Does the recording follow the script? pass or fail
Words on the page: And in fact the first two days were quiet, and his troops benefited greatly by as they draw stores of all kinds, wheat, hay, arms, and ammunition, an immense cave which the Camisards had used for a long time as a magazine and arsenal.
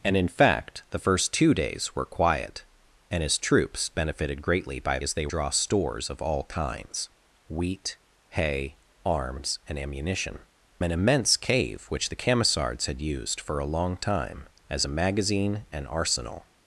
pass